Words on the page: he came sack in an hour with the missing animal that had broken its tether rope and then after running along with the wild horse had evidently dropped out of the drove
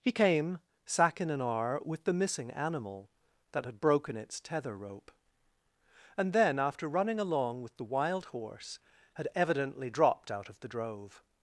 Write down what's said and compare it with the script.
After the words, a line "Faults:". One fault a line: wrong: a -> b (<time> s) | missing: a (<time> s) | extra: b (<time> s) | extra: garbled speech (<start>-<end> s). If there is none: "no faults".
he came sack in an hour with the missing animal that had broken its tether rope and then after running along with the wild horse had evidently dropped out of the drove
Faults:
no faults